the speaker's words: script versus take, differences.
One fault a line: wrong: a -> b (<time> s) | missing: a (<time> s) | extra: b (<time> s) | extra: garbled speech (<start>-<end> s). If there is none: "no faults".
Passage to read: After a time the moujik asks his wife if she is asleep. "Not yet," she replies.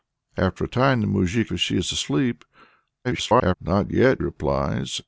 missing: asks his wife (1.5 s)
extra: garbled speech (3.0-3.5 s)
missing: she (4.2 s)